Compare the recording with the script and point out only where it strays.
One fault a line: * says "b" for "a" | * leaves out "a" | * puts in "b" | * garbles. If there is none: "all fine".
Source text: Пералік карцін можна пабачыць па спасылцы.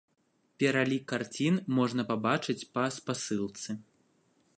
all fine